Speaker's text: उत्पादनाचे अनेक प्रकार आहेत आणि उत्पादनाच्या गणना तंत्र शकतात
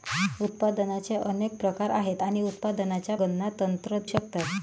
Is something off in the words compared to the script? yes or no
no